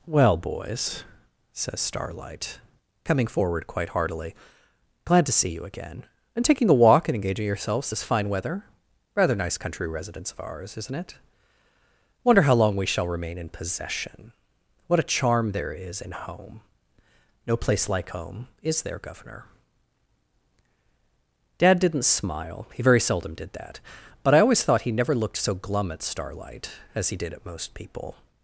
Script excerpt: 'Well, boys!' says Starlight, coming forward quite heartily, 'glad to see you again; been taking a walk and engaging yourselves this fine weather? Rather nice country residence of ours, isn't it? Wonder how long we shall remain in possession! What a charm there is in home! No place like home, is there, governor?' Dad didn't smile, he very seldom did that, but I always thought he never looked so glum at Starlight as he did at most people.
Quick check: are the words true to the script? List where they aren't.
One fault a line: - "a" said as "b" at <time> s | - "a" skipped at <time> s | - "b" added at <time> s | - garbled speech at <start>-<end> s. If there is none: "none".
- "been" said as "and" at 6.3 s